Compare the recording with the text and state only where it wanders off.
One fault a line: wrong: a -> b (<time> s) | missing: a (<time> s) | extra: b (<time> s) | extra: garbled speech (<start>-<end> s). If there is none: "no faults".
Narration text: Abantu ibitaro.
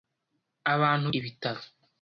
no faults